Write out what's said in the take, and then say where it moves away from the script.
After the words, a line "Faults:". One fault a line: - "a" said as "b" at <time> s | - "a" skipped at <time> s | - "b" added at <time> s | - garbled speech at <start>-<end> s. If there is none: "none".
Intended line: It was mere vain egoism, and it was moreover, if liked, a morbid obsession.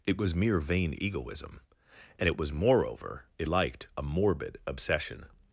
It was mere vain egoism, and it was moreover, if liked, a morbid obsession.
Faults:
none